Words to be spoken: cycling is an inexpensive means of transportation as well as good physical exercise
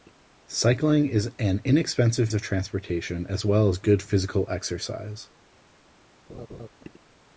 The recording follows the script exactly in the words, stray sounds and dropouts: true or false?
false